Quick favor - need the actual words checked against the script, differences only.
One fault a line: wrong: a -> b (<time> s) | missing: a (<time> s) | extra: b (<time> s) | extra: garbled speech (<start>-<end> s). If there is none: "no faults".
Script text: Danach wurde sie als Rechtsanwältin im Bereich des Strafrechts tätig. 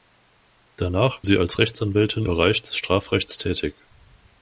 missing: wurde (1.3 s)
missing: im (2.3 s)